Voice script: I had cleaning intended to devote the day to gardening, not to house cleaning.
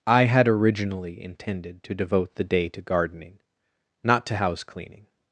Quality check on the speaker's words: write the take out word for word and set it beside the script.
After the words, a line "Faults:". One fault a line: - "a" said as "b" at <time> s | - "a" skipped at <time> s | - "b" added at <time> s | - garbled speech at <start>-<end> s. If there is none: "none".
I had originally intended to devote the day to gardening, not to house cleaning.
Faults:
- "cleaning" said as "originally" at 0.5 s